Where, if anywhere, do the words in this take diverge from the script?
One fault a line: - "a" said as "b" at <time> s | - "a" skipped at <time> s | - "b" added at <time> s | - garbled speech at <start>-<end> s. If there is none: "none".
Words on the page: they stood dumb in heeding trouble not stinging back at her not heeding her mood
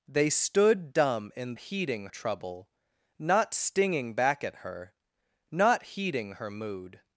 none